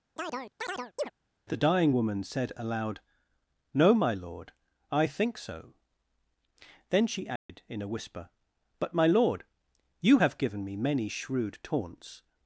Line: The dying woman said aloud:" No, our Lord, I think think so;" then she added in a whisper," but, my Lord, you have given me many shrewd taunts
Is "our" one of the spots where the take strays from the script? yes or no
yes